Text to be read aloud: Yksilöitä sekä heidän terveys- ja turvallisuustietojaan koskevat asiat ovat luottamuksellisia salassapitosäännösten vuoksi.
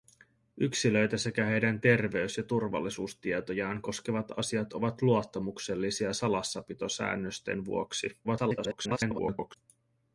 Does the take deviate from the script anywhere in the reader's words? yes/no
yes